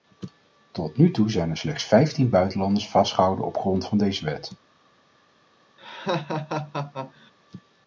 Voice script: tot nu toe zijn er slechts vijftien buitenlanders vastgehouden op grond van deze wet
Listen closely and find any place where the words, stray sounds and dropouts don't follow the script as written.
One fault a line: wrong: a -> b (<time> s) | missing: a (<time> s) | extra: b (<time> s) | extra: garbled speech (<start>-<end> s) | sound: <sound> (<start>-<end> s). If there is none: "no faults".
sound: laugh (5.8-7.3 s)